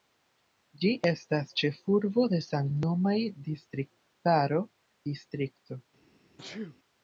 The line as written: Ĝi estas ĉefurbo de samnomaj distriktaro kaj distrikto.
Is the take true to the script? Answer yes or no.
no